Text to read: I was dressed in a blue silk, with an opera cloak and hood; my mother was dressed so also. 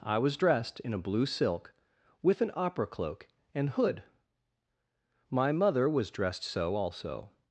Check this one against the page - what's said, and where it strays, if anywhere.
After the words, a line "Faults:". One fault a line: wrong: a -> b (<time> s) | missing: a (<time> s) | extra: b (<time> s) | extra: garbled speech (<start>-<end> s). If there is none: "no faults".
I was dressed in a blue silk, with an opera cloak and hood; my mother was dressed so also.
Faults:
no faults